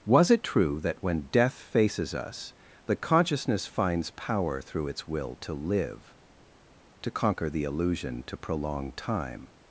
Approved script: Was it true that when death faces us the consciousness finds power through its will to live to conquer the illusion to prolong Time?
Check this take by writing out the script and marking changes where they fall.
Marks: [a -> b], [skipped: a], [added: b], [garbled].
Was it true that when death faces us the consciousness finds power through its will to live to conquer the illusion to prolong Time?